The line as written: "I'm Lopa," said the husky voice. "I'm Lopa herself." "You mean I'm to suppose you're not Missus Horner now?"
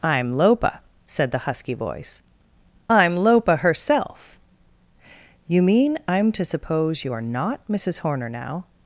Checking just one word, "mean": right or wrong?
right